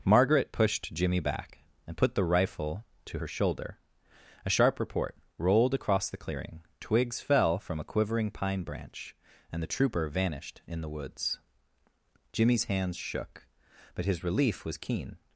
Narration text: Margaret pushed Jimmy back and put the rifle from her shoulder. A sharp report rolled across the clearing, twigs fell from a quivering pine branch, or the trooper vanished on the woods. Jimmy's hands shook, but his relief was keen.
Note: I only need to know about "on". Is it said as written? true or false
false